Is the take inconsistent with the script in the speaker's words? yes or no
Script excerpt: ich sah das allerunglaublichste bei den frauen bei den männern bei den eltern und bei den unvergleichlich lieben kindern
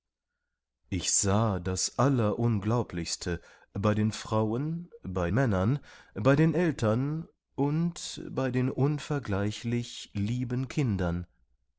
yes